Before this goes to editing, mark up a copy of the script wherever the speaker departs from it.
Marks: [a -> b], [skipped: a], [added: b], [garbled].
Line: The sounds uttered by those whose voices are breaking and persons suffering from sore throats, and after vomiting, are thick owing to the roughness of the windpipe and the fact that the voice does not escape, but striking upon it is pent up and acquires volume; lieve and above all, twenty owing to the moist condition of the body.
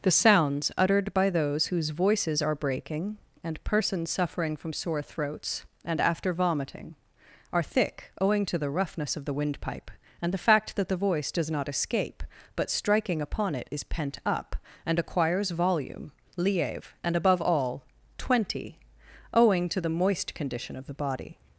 The sounds uttered by those whose voices are breaking and persons suffering from sore throats, and after vomiting, are thick owing to the roughness of the windpipe and the fact that the voice does not escape, but striking upon it is pent up and acquires volume; lieve and above all, twenty owing to the moist condition of the body.